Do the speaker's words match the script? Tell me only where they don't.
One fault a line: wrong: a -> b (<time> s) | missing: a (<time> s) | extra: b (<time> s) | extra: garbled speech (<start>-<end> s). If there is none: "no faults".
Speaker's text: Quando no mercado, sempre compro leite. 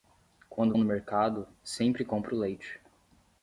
no faults